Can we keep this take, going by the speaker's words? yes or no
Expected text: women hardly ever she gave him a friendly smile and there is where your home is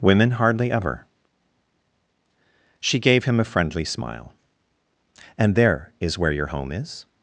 yes